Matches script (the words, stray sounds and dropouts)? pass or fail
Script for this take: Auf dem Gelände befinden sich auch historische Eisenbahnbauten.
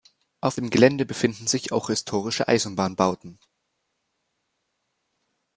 pass